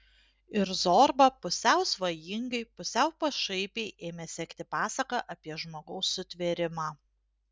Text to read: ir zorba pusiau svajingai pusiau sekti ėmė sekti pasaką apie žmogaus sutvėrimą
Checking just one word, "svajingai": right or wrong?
right